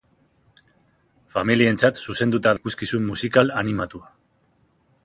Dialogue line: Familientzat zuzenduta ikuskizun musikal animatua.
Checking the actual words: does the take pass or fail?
pass